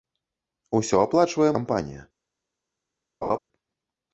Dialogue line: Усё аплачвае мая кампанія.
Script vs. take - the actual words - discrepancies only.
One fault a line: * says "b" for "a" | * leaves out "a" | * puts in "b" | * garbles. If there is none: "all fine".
* leaves out "мая"